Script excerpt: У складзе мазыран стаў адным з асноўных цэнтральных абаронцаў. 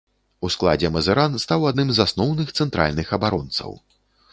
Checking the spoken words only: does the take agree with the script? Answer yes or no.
yes